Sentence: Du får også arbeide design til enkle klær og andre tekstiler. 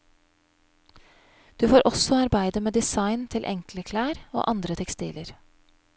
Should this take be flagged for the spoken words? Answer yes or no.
yes